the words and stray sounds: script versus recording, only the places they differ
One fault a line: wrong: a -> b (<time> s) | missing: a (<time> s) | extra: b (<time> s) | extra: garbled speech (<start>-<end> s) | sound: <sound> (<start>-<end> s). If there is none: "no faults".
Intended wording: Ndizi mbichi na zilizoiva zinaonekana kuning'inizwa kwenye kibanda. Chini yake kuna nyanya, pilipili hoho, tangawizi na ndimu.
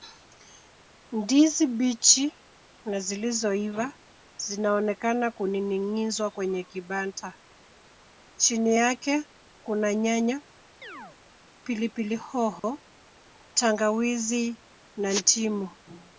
sound: chirp (10.8-11.2 s)
sound: dropout (12.6-12.6 s)